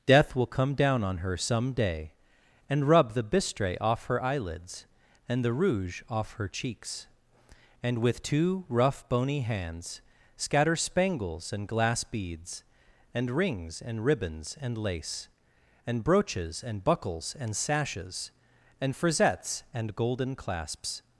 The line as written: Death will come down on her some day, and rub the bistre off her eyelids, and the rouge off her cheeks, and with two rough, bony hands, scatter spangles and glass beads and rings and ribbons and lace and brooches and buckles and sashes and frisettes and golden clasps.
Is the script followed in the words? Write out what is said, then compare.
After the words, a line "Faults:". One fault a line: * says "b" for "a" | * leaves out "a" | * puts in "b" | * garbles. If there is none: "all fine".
Death will come down on her some day, and rub the bistre off her eyelids, and the rouge off her cheeks, and with two rough, bony hands, scatter spangles and glass beads and rings and ribbons and lace and brooches and buckles and sashes and frisettes and golden clasps.
Faults:
all fine